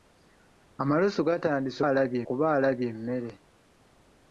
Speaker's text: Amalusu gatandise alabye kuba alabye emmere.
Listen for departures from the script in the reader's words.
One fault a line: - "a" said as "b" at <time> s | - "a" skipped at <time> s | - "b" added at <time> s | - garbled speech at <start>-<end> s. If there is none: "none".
none